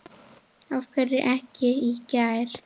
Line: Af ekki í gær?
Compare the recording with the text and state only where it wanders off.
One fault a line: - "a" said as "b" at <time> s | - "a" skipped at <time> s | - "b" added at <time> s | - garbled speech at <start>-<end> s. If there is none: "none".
- "hverju" added at 0.9 s